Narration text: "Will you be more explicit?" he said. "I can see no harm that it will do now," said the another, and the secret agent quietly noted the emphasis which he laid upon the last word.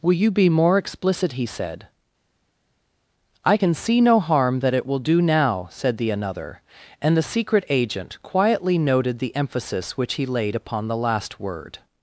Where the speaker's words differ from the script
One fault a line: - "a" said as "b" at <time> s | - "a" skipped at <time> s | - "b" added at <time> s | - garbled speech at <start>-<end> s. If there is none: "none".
none